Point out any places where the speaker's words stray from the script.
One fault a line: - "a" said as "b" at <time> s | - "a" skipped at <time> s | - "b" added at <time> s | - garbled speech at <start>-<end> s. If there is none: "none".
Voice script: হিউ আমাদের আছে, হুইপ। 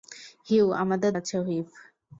none